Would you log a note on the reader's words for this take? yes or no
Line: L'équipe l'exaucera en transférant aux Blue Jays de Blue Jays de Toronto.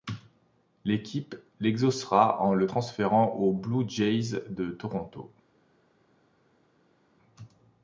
yes